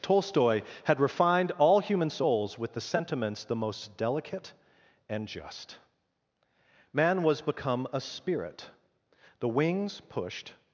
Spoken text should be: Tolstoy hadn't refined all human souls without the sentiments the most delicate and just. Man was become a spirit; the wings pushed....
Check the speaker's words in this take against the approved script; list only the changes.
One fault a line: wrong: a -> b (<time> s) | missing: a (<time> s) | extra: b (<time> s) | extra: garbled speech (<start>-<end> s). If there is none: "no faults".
wrong: hadn't -> had (0.8 s)
wrong: without -> with (2.6 s)